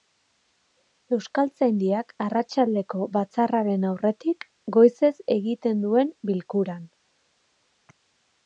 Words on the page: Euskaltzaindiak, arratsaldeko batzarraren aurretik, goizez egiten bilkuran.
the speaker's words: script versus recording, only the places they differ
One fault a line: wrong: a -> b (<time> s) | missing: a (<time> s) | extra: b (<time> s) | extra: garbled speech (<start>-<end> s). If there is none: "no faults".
extra: duen (5.9 s)